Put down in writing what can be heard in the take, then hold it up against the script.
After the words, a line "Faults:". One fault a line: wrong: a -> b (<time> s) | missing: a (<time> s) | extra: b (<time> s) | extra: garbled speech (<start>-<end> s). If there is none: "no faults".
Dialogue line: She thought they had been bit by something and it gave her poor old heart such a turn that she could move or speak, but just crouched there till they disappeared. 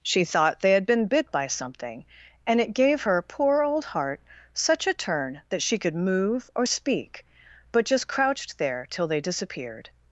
She thought they had been bit by something and it gave her poor old heart such a turn that she could move or speak, but just crouched there till they disappeared.
Faults:
no faults